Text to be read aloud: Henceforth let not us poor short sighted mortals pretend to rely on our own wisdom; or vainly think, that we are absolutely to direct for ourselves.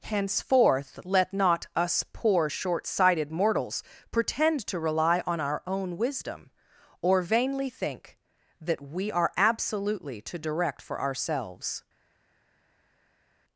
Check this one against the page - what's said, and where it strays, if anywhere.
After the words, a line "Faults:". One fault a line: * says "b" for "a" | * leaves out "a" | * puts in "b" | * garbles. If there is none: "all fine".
Henceforth let not us poor short sighted mortals pretend to rely on our own wisdom; or vainly think, that we are absolutely to direct for ourselves.
Faults:
all fine